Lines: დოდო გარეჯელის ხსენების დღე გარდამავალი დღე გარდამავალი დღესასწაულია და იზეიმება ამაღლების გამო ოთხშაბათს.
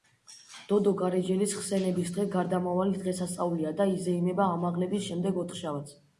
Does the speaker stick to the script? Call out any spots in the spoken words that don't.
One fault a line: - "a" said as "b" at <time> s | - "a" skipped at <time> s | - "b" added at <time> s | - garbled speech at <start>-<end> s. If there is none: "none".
- "დღე გარდამავალი" skipped at 3.0 s
- "გამო" said as "შემდეგ" at 5.1 s